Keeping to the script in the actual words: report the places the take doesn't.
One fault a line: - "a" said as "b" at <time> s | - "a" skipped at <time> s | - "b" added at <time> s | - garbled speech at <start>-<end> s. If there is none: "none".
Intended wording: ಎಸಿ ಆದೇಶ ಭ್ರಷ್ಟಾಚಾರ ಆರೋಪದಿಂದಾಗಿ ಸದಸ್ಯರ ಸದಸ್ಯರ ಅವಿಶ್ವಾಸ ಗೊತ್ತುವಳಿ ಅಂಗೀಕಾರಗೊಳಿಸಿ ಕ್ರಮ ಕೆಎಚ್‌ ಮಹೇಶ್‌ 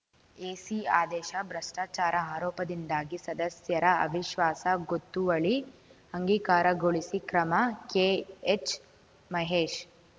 - "ಸದಸ್ಯರ" skipped at 3.9 s